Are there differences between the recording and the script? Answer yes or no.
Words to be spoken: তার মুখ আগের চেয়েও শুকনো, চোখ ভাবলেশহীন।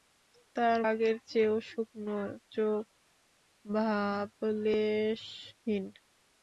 yes